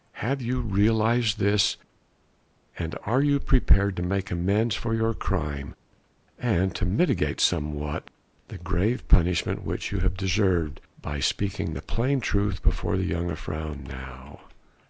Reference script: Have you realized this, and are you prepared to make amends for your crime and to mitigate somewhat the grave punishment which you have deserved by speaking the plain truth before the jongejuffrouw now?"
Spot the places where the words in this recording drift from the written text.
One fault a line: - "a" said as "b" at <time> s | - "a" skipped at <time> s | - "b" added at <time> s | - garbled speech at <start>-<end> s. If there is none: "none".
none